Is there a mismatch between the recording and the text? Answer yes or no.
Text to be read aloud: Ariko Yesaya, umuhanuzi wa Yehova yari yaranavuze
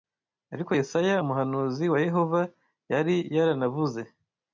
no